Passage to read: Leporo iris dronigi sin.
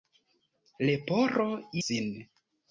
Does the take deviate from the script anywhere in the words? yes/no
yes